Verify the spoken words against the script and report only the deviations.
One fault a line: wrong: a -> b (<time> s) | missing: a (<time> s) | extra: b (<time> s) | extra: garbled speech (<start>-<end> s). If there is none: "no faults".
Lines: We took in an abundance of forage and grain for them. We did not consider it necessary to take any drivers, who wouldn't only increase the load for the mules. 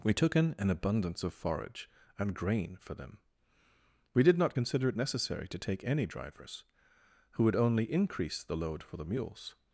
wrong: wouldn't -> would (7.4 s)